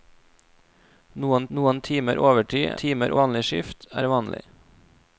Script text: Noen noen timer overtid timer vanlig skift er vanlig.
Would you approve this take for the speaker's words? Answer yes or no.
yes